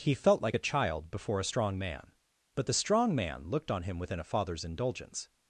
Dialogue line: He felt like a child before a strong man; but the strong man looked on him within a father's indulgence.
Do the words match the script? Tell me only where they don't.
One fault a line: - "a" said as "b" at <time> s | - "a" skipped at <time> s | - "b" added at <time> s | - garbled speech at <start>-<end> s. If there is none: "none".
none